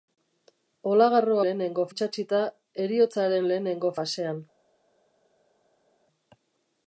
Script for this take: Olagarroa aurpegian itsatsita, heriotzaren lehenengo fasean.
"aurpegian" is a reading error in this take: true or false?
true